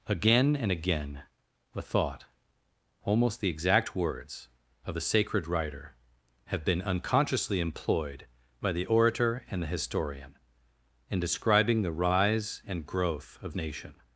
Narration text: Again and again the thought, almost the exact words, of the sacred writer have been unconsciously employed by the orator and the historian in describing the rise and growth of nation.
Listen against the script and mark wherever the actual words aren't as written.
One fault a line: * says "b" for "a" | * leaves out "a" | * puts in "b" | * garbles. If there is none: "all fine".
all fine